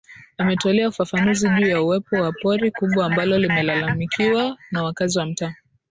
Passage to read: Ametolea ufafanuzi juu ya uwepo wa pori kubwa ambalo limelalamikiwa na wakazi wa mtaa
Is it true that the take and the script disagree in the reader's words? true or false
false